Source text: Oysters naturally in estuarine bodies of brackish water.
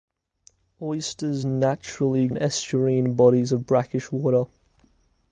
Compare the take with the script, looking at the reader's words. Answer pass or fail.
pass